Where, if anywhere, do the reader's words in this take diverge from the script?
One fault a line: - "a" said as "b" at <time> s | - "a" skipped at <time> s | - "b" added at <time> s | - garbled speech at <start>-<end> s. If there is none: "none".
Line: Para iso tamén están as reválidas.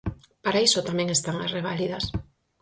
none